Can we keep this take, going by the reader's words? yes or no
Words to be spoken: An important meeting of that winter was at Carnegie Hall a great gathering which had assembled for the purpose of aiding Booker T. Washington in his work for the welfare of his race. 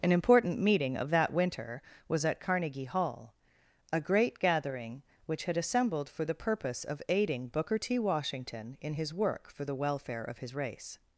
yes